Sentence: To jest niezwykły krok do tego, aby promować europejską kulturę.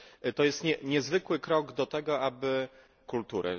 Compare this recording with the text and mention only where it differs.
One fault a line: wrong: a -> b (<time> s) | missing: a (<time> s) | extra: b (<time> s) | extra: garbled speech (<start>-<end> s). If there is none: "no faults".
missing: promować europejską (2.7 s)